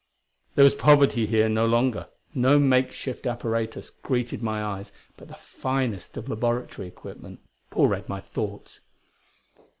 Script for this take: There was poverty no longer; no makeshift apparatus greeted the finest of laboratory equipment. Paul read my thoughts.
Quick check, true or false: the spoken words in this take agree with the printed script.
false